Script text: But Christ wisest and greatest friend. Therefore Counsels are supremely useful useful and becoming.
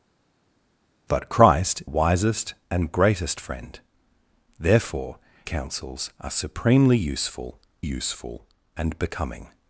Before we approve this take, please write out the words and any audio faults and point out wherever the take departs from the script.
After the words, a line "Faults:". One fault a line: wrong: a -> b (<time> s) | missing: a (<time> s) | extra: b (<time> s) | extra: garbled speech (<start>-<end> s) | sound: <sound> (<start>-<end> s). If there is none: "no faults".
But Christ wisest and greatest friend. Therefore Counsels are supremely useful useful and becoming.
Faults:
no faults